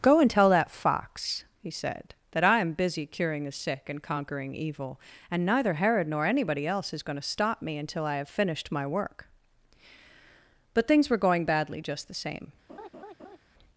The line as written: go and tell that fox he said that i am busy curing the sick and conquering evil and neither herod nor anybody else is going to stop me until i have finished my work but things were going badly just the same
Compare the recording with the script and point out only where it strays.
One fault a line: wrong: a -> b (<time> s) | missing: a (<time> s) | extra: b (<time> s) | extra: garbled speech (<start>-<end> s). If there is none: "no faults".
no faults